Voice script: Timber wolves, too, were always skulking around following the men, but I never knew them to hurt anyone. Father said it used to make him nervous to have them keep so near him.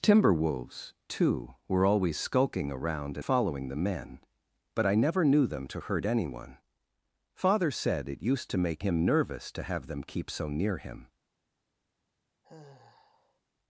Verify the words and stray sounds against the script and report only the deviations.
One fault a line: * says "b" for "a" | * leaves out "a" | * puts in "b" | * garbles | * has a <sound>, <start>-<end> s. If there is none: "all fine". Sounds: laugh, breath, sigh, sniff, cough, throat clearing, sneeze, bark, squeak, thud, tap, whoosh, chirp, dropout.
* has a sigh, 12.4-13.4 s